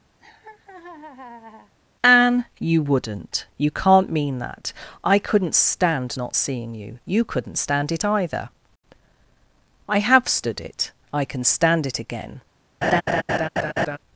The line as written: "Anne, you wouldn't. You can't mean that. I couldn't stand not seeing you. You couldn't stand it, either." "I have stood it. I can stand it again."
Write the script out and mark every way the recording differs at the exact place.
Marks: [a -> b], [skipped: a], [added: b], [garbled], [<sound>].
[laugh] "Anne, you wouldn't. You can't mean that. I couldn't stand not seeing you. You couldn't stand it, either." "I have stood it. I can stand it again." [laugh]